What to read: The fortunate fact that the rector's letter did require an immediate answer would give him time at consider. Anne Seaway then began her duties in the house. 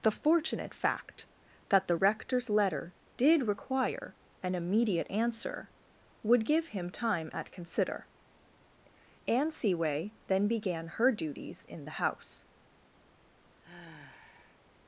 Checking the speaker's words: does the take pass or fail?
pass